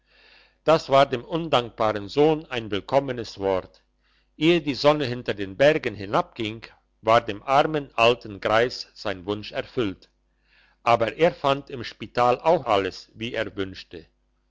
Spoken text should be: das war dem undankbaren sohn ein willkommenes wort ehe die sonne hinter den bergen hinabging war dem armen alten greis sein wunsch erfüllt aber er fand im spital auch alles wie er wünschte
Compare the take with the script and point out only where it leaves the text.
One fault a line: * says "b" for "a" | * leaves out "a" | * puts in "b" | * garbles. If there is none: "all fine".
all fine